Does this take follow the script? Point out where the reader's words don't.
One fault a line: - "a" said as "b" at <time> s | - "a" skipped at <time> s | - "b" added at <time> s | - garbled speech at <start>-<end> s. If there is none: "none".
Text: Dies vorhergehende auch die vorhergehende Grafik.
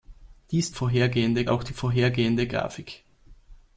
none